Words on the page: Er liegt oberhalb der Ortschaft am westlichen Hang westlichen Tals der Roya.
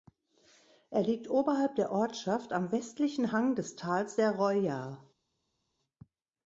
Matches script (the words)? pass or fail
fail